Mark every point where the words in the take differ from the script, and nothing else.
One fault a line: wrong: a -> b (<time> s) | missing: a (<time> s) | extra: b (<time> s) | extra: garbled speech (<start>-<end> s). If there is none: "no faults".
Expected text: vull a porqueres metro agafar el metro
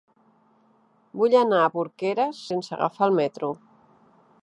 extra: anar (1.4 s)
wrong: metro -> sense (2.5 s)